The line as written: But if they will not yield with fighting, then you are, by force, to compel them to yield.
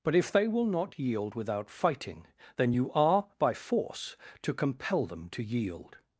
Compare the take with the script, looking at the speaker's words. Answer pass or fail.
fail